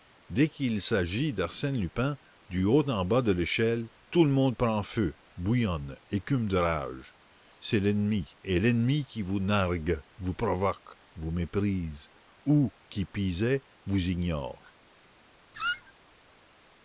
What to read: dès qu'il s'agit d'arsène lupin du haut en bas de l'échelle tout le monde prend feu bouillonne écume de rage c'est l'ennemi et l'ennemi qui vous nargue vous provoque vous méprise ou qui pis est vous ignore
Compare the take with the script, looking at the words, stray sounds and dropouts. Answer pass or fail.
fail